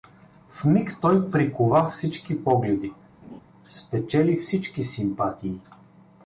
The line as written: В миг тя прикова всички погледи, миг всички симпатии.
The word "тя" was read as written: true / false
false